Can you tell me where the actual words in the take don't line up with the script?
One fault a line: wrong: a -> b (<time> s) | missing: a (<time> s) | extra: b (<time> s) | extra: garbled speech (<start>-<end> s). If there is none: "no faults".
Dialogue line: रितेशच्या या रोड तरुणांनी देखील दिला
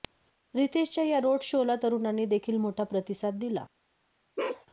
extra: शोला (1.4 s)
extra: मोठा प्रतिसाद (2.6 s)